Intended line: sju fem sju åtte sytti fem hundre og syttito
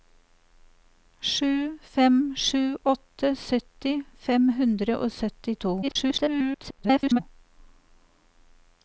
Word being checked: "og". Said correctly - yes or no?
yes